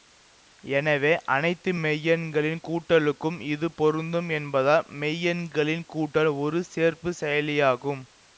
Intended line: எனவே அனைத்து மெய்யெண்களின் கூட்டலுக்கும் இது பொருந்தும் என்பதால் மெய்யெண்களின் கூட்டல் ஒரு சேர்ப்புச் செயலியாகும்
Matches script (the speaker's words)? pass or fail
pass